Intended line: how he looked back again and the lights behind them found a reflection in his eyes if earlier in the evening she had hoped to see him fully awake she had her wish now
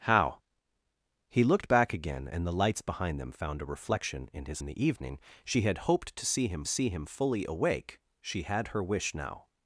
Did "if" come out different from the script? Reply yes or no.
yes